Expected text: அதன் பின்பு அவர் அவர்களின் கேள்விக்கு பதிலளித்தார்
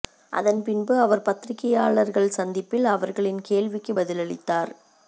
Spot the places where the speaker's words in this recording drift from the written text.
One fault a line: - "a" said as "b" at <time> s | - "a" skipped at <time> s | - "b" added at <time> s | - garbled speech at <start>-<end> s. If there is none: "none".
- "பத்திரிகையாளர்கள் சந்திப்பில்" added at 1.2 s